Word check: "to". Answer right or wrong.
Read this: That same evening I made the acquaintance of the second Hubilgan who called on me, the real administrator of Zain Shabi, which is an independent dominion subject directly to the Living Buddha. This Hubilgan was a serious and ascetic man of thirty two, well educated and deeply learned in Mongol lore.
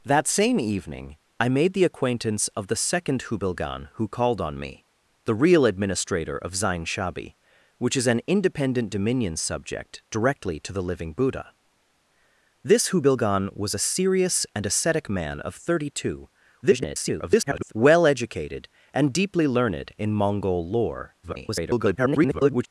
right